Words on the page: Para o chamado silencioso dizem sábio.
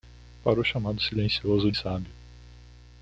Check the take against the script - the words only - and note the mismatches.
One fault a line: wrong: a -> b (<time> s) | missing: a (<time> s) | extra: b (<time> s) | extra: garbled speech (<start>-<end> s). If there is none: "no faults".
missing: dizem (1.7 s)